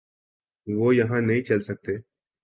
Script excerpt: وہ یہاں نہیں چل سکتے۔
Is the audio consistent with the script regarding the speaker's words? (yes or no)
yes